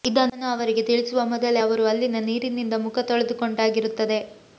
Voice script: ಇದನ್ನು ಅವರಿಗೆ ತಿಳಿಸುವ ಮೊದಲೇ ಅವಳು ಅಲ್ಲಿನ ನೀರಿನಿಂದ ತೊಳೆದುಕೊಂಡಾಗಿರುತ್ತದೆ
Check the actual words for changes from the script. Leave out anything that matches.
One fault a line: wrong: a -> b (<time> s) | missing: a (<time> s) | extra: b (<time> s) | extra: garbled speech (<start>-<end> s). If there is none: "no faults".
wrong: ಅವಳು -> ಅವರು (1.6 s)
extra: ಮುಖ (2.8 s)